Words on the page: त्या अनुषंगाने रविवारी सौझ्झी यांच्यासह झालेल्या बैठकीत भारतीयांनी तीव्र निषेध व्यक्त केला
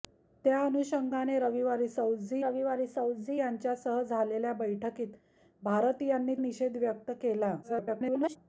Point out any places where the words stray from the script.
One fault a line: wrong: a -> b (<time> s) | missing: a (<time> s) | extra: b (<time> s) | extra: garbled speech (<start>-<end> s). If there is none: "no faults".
extra: रविवारी सौझ्झी (2.4 s)
missing: तीव्र (6.3 s)
extra: garbled speech (7.6-8.4 s)